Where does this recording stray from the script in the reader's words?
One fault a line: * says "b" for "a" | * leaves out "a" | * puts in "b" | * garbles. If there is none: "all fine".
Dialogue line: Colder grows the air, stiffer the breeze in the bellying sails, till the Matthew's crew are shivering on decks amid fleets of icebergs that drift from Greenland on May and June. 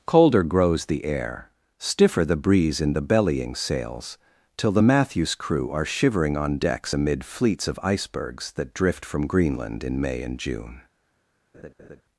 * says "in" for "on"